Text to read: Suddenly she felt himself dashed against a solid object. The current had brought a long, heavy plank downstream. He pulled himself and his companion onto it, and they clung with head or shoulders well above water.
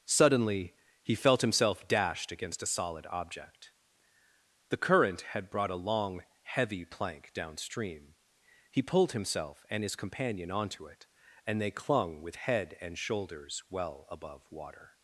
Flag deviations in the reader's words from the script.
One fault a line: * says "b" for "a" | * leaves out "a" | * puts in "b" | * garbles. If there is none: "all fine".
* says "he" for "she"
* says "and" for "or"